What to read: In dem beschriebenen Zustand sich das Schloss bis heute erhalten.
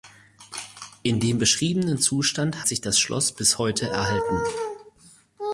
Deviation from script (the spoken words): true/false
false